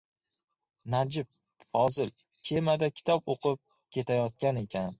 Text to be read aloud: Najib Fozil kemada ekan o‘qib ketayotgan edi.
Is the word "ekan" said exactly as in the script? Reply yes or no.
no